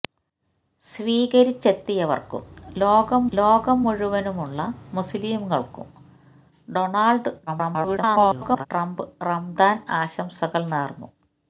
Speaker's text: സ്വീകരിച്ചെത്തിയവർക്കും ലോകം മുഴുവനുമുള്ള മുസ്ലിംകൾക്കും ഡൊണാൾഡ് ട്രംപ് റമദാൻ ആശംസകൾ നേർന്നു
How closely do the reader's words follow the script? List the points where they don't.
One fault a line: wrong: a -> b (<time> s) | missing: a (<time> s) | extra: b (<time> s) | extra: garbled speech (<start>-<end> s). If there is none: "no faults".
extra: ലോകം (3.3 s)
extra: garbled speech (7.5-8.7 s)